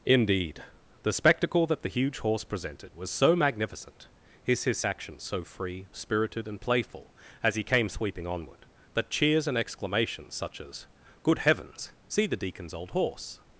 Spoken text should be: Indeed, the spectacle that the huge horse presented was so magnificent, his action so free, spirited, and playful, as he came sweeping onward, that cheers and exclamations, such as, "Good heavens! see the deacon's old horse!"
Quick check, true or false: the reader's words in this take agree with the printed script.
false